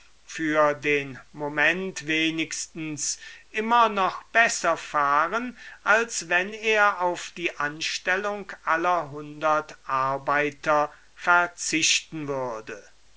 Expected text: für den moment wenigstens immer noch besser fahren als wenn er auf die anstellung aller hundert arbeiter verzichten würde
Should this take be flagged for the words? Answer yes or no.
no